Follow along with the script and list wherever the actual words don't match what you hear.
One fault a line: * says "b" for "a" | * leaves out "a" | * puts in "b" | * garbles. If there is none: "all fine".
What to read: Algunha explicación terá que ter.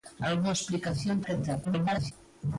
* leaves out "terá"
* garbles